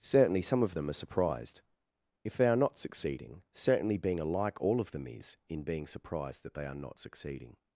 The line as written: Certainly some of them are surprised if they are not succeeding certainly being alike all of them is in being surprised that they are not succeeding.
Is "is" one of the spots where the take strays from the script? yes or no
no